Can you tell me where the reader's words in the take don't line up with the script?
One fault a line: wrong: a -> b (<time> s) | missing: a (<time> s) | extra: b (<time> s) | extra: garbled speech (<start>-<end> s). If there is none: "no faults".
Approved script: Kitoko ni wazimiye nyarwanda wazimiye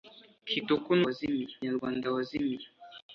no faults